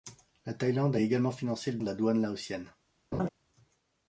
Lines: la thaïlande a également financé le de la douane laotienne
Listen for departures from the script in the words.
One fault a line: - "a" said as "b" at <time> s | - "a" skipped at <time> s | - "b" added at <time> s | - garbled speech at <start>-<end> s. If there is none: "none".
none